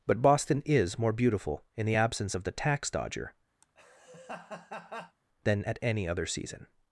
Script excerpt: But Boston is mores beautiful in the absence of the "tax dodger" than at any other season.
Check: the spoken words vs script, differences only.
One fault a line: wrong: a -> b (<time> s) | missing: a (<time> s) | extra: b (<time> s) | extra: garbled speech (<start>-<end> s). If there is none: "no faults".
wrong: mores -> more (1.0 s)